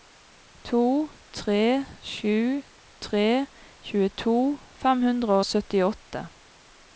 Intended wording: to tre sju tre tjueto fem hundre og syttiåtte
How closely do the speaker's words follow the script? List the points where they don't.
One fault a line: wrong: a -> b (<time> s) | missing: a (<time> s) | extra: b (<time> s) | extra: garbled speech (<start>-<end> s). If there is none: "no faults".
no faults